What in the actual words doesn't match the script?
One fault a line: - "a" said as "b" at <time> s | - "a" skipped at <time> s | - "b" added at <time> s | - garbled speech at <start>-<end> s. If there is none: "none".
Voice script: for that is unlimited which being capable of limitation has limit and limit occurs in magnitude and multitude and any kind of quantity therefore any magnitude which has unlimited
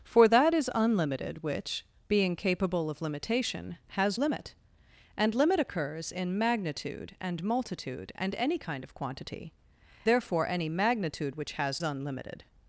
none